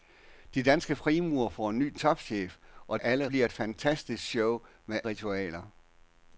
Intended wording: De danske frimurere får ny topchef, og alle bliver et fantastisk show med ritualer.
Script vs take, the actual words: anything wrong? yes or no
no